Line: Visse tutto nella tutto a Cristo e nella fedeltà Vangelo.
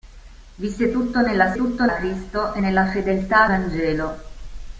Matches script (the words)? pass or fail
pass